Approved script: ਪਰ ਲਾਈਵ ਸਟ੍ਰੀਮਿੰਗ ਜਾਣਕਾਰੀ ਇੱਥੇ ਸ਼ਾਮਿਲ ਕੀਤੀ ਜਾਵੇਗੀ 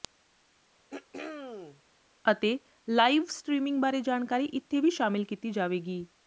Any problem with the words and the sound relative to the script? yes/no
yes